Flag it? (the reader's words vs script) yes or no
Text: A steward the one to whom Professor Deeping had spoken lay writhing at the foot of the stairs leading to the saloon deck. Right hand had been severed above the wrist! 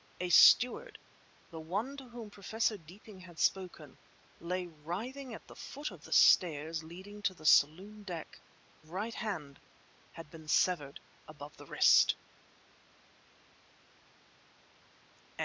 no